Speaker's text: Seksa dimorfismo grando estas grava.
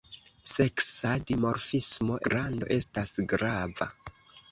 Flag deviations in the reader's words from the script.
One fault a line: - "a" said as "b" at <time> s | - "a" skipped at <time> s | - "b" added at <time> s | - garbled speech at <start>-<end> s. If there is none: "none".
none